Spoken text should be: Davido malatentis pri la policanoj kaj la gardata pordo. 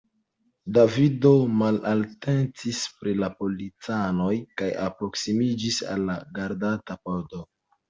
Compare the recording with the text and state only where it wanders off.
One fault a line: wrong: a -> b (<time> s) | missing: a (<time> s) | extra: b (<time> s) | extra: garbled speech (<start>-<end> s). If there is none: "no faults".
extra: alproksimiĝis al (4.9 s)